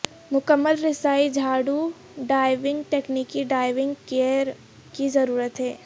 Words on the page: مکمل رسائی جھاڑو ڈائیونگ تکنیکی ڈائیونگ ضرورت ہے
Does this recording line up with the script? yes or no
no